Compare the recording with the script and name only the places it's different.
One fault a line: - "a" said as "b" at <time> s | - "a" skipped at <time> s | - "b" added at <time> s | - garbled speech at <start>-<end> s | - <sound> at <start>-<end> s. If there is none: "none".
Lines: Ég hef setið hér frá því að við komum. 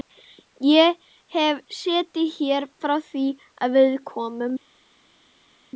none